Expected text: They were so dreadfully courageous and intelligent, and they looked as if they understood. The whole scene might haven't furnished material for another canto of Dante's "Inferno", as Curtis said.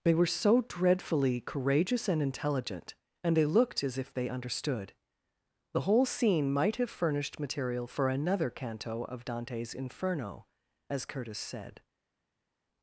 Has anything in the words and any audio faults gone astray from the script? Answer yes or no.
yes